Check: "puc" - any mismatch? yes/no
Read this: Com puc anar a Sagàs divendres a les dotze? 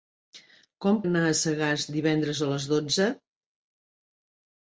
yes